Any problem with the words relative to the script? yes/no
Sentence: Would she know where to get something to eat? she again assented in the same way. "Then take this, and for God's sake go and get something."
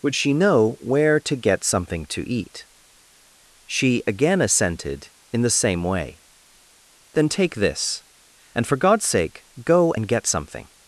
no